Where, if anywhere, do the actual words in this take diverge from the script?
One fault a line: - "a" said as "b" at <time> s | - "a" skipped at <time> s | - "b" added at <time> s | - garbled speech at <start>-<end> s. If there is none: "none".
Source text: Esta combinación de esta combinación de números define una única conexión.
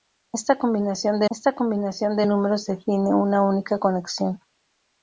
none